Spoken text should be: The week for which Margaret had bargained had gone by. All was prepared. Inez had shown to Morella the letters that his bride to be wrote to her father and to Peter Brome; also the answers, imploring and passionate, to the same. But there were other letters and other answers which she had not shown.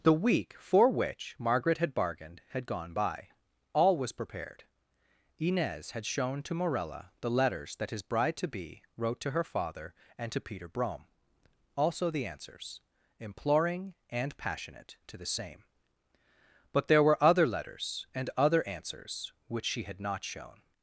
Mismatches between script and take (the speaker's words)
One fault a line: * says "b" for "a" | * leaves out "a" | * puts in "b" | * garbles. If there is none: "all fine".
all fine